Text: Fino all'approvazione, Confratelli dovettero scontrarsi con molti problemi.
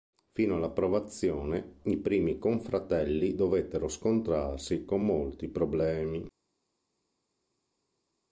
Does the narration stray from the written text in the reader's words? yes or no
yes